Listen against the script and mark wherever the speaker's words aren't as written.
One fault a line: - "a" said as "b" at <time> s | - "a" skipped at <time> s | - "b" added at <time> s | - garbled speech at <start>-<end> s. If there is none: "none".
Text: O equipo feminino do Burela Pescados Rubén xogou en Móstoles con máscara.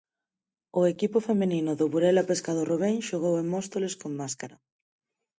none